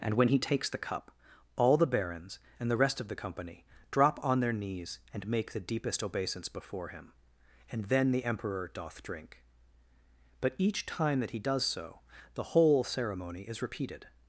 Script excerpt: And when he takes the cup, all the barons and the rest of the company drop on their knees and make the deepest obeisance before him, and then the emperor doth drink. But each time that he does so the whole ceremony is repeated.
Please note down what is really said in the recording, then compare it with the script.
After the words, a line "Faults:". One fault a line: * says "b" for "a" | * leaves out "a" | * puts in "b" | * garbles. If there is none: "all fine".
And when he takes the cup, all the barons and the rest of the company drop on their knees and make the deepest obeisance before him, and then the emperor doth drink. But each time that he does so the whole ceremony is repeated.
Faults:
all fine